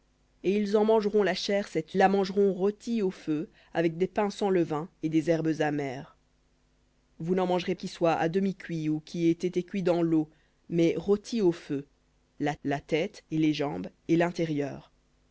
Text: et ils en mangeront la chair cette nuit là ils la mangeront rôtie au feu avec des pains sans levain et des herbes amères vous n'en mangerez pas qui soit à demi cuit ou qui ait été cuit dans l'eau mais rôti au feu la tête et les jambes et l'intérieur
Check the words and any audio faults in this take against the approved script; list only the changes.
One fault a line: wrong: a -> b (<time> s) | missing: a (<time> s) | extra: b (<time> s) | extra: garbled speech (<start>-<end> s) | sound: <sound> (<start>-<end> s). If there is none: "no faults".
missing: nuit là ils (1.9 s)
missing: pas (7.7 s)
extra: la (12.6 s)